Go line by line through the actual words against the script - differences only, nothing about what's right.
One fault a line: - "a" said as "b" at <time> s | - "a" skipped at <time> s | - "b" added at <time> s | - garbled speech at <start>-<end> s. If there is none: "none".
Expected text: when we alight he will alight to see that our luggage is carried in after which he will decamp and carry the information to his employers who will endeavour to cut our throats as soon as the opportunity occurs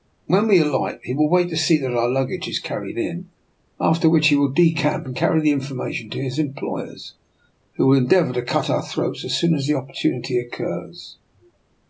- "alight" said as "wait" at 1.3 s